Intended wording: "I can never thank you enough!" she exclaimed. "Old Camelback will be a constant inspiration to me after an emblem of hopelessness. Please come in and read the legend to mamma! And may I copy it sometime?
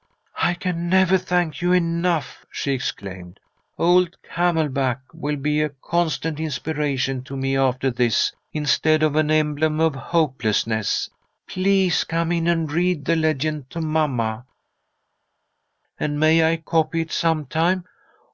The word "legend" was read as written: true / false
true